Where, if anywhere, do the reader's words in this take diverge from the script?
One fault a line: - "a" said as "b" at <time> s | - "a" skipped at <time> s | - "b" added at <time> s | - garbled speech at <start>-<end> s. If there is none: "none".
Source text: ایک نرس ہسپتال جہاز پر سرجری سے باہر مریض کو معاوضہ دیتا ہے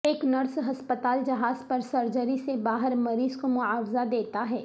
none